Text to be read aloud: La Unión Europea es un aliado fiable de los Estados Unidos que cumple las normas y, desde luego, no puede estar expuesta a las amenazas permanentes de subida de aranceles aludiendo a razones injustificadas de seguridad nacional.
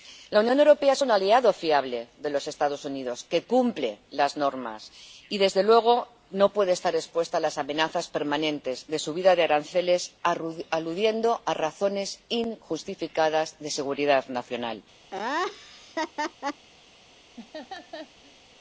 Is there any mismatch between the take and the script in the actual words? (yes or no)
no